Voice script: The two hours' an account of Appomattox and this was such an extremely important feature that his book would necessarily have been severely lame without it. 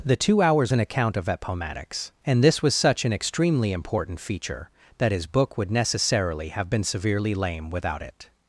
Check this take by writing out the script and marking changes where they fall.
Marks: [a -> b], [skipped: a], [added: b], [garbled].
The two hours' an account of Appomattox and this was such an extremely important feature that his book would necessarily have been severely lame without it.